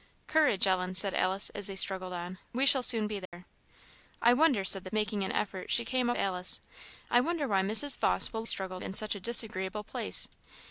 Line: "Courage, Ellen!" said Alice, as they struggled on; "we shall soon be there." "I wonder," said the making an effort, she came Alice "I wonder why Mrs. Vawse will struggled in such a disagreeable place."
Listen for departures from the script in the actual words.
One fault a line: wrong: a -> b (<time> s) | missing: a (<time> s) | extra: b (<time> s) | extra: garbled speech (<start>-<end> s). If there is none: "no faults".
no faults